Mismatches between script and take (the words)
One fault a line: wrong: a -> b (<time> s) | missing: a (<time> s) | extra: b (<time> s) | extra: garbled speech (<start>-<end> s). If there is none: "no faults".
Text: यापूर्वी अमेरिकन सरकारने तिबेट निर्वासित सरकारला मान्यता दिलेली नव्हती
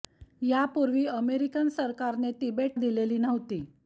missing: निर्वासित सरकारला मान्यता (2.8 s)